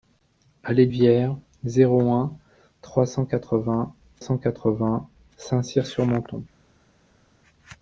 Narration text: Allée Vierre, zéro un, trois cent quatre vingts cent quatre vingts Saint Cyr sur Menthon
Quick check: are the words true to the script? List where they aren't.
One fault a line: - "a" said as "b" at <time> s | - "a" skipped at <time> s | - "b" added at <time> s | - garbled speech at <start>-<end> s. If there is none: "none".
none